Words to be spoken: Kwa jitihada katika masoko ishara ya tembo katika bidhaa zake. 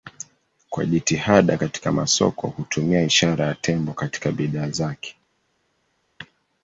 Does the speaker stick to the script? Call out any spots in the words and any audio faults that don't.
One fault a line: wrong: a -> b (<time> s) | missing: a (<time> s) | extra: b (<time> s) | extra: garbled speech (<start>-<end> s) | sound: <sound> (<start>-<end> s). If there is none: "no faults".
extra: hutumia (2.5 s)